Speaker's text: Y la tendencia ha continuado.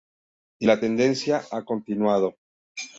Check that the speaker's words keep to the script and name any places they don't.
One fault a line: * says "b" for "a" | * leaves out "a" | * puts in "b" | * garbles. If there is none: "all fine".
all fine